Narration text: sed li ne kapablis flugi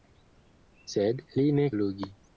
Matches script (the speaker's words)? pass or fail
fail